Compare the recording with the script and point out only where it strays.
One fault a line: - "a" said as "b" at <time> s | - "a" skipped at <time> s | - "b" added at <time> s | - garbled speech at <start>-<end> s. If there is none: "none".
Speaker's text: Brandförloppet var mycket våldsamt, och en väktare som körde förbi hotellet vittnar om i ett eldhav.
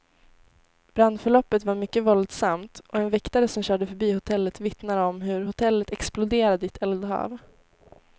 - "hur hotellet exploderade" added at 5.2 s